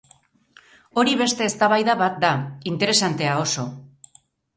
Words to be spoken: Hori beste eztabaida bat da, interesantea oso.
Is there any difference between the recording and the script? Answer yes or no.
no